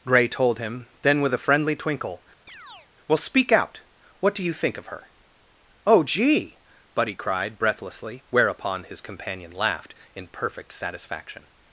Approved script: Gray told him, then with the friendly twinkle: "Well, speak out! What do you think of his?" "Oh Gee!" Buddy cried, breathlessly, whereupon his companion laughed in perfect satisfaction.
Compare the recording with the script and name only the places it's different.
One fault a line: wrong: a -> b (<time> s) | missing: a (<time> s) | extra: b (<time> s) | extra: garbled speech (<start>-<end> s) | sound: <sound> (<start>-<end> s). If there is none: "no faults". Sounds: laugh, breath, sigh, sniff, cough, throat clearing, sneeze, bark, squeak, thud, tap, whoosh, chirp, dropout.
wrong: the -> a (1.3 s)
sound: chirp (2.5-2.9 s)
wrong: his -> her (4.9 s)